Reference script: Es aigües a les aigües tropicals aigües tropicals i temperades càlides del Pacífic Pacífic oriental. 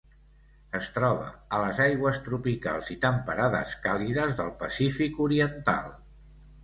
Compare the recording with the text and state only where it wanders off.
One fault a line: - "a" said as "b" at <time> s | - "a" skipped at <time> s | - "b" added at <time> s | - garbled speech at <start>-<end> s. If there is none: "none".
- "aigües" said as "troba" at 0.9 s
- "aigües tropicals" skipped at 2.9 s
- "Pacífic" skipped at 5.2 s